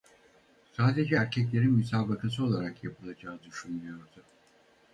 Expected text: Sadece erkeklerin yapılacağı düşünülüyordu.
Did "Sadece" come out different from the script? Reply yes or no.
no